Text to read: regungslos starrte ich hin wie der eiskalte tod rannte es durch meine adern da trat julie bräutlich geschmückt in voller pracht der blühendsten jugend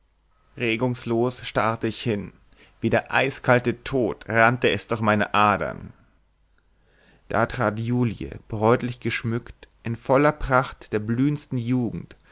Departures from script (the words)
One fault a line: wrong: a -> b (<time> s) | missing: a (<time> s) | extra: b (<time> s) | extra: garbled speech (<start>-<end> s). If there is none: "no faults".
no faults